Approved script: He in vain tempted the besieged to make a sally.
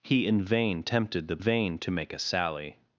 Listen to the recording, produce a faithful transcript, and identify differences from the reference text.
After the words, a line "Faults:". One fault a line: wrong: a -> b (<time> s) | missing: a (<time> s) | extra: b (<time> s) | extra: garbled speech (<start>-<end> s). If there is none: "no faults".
He in vain tempted the vain to make a sally.
Faults:
wrong: besieged -> vain (1.4 s)